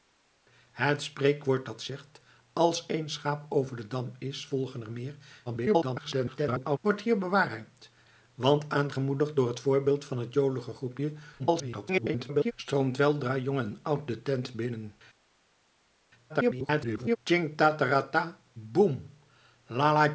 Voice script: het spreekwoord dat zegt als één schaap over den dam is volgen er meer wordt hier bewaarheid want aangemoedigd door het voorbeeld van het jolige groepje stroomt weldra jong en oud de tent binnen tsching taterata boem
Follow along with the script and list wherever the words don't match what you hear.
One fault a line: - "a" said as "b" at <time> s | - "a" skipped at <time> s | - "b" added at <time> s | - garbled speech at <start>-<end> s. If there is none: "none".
- garbled speech at 5.5-6.8 s
- garbled speech at 11.4-12.5 s
- garbled speech at 16.3-17.2 s